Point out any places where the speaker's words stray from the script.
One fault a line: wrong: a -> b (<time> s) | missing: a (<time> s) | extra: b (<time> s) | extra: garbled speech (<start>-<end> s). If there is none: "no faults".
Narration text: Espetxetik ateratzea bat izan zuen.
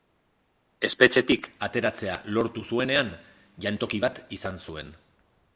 extra: lortu zuenean jantoki (2.4 s)